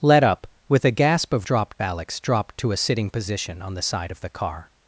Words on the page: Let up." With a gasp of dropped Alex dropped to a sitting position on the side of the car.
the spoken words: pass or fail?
pass